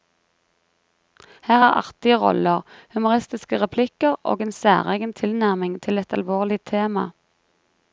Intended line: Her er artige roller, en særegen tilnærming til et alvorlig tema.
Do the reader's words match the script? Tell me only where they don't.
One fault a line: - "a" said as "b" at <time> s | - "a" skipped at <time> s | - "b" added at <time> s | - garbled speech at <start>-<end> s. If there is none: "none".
- "humoristiske replikker og" added at 2.9 s